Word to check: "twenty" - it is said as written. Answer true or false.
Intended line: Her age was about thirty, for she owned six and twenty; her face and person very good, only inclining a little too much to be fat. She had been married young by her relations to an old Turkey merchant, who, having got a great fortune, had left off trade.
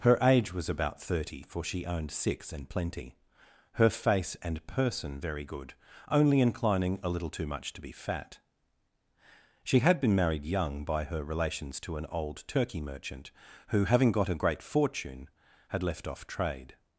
false